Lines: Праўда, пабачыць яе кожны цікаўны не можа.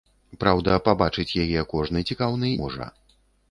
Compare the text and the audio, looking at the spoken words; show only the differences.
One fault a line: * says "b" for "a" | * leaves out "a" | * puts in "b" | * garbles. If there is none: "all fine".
* leaves out "не"